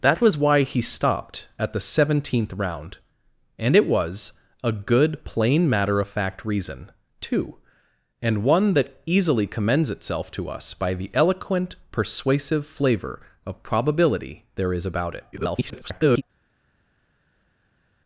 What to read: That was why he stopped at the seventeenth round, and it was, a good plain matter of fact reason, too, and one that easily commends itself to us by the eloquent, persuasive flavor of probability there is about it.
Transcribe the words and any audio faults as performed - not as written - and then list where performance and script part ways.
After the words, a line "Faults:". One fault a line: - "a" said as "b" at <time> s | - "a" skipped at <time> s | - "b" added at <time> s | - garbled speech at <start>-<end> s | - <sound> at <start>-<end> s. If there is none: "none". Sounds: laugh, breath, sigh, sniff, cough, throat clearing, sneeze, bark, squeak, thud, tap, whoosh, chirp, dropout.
That was why he stopped at the seventeenth round, and it was, a good plain matter of fact reason, too, and one that easily commends itself to us by the eloquent, persuasive flavor of probability there is about it. [garbled]
Faults:
- garbled speech at 15.3-16.2 s